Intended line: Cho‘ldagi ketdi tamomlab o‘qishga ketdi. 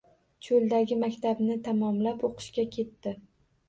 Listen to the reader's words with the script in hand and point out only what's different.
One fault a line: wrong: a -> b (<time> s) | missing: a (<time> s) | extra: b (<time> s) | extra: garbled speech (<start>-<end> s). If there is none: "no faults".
wrong: ketdi -> maktabni (1.0 s)